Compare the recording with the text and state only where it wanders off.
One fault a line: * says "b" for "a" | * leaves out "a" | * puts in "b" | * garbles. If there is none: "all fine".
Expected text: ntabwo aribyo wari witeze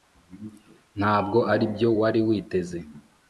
all fine